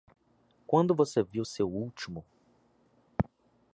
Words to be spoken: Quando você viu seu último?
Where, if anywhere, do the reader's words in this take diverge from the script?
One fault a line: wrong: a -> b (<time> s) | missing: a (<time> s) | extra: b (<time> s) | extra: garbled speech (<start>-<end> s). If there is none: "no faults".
no faults